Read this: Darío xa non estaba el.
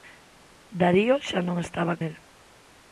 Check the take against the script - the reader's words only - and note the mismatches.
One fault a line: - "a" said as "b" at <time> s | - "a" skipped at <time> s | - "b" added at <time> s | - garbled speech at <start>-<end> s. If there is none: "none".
none